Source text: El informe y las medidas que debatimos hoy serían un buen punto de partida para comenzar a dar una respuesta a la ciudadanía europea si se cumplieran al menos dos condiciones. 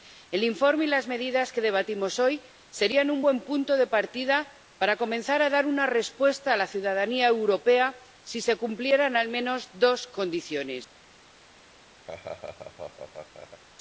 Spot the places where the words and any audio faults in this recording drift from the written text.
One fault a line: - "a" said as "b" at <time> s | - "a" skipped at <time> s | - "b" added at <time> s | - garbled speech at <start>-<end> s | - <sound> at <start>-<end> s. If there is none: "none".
- laugh at 12.1-13.6 s